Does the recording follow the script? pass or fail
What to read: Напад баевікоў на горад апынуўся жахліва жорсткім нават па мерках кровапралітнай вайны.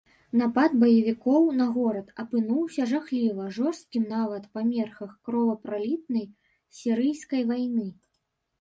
fail